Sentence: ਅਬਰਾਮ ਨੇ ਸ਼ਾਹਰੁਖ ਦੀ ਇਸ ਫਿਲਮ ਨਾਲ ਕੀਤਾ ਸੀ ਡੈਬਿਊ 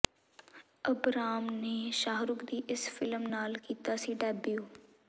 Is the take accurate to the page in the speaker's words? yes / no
yes